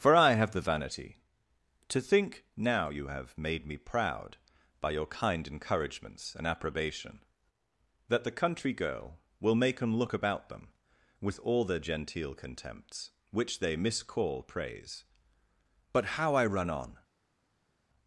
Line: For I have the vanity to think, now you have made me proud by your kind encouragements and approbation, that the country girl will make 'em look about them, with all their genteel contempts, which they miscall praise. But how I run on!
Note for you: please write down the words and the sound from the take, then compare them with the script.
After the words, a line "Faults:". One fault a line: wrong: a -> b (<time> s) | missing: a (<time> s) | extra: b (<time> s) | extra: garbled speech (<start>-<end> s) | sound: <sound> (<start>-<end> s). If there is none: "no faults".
For I have the vanity to think, now you have made me proud by your kind encouragements and approbation, that the country girl will make 'em look about them, with all their genteel contempts, which they miscall praise. But how I run on!
Faults:
no faults